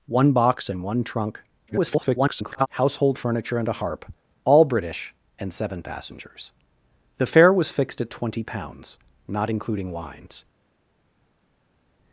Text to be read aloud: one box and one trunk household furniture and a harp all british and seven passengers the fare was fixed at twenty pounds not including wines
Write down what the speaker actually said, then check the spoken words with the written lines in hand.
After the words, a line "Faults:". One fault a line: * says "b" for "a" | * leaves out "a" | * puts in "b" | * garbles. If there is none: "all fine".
one box and one trunk [garbled] household furniture and a harp all british and seven passengers the fare was fixed at twenty pounds not including wines
Faults:
* garbles